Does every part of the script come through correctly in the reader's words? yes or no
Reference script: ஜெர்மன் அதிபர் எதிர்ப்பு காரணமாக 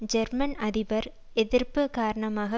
yes